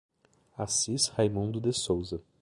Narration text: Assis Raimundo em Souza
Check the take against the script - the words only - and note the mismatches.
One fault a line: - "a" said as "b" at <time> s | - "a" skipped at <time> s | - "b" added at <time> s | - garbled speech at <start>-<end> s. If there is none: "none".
- "em" said as "de" at 1.6 s